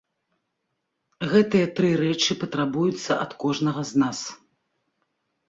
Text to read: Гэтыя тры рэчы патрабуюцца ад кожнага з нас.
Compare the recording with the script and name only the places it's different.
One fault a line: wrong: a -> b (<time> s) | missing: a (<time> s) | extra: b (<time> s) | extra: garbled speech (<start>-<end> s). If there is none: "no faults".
no faults